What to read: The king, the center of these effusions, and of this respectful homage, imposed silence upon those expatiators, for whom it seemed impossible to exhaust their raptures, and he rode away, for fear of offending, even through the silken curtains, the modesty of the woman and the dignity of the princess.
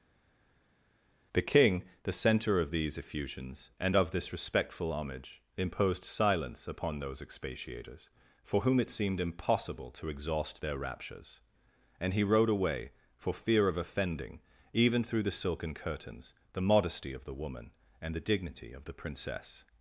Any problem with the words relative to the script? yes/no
no